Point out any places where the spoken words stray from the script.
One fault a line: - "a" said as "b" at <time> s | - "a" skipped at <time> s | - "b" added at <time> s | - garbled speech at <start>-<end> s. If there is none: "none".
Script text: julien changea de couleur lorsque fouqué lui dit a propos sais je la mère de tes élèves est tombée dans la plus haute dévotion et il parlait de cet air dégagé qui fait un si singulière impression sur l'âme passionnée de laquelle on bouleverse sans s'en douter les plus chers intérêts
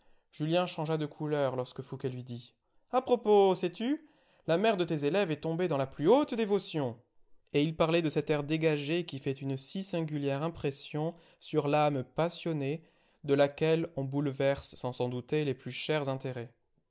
- "je" said as "tu" at 3.7 s
- "un" said as "une" at 9.4 s